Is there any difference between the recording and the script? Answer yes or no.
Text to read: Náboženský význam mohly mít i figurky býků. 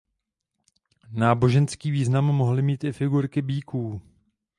no